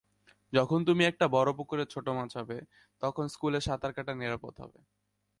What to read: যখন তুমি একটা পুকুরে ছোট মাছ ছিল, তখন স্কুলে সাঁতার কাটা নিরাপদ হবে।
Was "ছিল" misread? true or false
true